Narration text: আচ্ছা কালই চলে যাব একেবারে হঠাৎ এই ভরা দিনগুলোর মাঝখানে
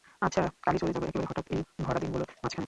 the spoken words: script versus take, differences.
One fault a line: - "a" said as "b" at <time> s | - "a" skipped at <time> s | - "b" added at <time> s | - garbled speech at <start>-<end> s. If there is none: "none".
none